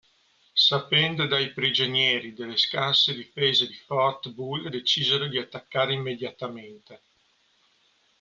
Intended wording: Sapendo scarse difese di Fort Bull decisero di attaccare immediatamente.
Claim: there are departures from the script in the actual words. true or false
true